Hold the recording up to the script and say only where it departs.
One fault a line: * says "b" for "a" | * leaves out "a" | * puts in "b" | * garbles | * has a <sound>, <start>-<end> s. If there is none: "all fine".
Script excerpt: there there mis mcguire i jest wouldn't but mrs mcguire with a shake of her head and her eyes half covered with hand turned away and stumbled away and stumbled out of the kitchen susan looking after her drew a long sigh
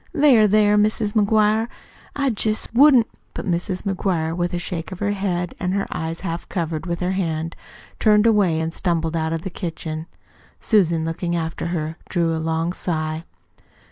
* has a dropout, 2.7-2.7 s
* puts in "her"
* leaves out "away and stumbled"